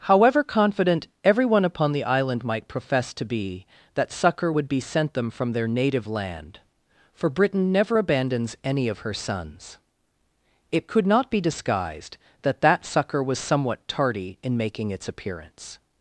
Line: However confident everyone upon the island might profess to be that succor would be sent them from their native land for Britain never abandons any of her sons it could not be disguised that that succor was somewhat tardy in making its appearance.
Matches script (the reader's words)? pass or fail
pass